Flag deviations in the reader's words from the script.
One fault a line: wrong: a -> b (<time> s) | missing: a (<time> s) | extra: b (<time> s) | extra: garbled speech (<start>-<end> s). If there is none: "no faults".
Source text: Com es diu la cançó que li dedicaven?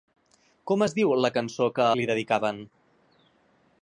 no faults